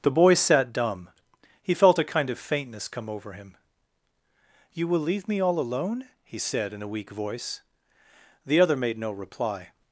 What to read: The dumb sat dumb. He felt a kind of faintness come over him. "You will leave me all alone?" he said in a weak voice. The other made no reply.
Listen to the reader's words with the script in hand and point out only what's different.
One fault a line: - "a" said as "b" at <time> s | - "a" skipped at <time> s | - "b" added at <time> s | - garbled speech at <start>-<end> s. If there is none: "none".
- "dumb" said as "boy" at 0.1 s